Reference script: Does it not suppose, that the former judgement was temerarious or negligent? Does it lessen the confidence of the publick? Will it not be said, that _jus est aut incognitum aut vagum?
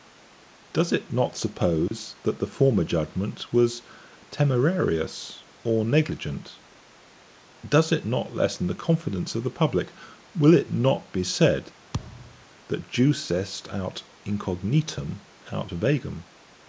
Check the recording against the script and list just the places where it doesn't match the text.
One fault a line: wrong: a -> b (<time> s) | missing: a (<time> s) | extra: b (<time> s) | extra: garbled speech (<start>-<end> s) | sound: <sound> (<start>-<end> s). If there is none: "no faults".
sound: dropout (1.9-1.9 s)
extra: not (8.0 s)
sound: thud (11.9-12.4 s)